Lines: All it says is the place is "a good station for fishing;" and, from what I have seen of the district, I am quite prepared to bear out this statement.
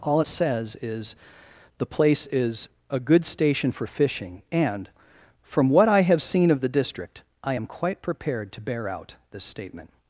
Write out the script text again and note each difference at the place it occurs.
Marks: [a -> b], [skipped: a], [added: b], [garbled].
All [skipped: it] says is the place is "a good station for fishing;" and, from what I have seen of the district, I am quite prepared to bear out this statement.